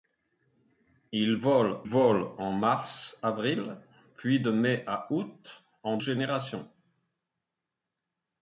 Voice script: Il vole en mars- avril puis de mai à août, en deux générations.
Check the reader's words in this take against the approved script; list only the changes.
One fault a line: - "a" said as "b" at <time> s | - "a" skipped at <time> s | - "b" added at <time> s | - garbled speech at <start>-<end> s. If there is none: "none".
- "vole" added at 1.8 s
- "deux" skipped at 6.0 s